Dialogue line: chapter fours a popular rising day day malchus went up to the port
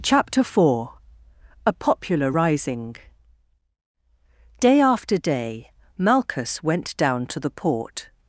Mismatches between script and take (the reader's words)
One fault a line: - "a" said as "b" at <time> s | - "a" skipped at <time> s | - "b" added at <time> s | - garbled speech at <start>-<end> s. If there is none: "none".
- "fours" said as "four" at 0.4 s
- "after" added at 4.8 s
- "up" said as "down" at 7.0 s